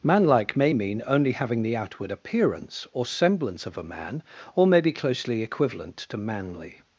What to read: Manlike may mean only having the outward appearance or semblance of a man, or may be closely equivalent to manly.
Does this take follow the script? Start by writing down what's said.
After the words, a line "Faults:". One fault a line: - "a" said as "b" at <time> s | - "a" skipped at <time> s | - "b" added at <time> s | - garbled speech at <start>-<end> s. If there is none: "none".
Manlike may mean only having the outward appearance or semblance of a man, or may be closely equivalent to manly.
Faults:
none